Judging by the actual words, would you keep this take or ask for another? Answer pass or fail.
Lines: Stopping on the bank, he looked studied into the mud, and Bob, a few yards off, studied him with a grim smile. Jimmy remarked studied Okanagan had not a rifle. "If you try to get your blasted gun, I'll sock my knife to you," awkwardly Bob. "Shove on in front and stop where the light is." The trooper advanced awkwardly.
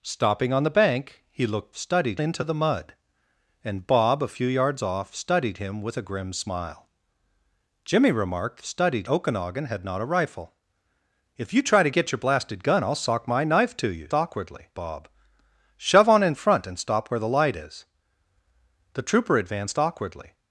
pass